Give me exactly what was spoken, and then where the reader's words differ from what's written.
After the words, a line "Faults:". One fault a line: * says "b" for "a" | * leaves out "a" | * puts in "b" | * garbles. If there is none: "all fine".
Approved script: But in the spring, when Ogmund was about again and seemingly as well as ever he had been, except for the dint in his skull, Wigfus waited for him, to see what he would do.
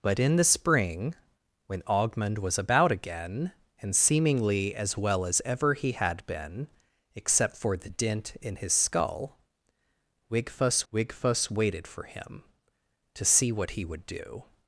But in the spring, when Ogmund was about again and seemingly as well as ever he had been, except for the dint in his skull, Wigfus Wigfus waited for him, to see what he would do.
Faults:
* puts in "Wigfus"